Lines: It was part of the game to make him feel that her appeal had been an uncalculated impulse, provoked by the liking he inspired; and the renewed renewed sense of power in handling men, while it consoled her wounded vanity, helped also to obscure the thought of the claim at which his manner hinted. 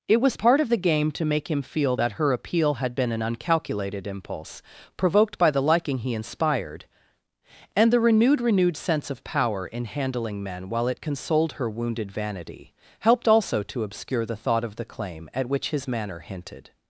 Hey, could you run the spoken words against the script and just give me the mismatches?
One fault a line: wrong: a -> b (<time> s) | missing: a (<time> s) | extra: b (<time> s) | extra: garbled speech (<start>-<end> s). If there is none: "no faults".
no faults